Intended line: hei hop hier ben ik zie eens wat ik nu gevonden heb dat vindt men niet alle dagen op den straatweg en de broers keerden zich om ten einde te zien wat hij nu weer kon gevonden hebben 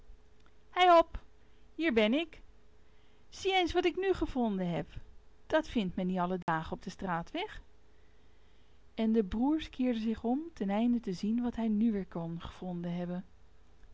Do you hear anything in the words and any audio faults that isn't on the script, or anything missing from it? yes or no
yes